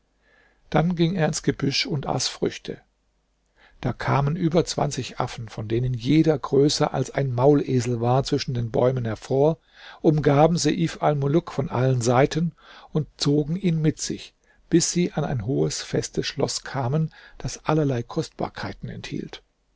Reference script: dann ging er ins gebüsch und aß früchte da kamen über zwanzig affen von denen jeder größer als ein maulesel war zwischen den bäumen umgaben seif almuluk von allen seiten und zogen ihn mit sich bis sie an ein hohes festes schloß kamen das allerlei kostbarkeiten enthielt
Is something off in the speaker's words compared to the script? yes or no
yes